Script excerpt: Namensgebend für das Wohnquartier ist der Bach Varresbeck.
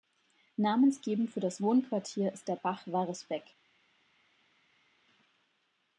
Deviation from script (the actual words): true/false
false